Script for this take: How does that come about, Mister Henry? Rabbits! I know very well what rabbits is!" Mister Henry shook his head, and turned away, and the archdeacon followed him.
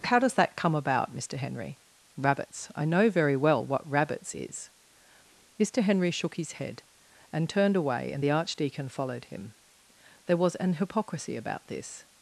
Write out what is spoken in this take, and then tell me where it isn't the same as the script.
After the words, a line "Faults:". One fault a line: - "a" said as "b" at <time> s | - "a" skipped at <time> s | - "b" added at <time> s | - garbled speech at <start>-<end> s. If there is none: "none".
How does that come about, Mister Henry? Rabbits! I know very well what rabbits is!" Mister Henry shook his head, and turned away, and the archdeacon followed him. There was an hypocrisy about this
Faults:
- "There was an hypocrisy about this" added at 10.3 s